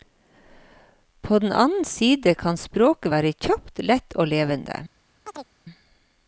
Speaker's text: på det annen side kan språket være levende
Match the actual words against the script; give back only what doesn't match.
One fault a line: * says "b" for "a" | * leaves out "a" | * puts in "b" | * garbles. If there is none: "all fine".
* says "den" for "det"
* puts in "kjapt lett og"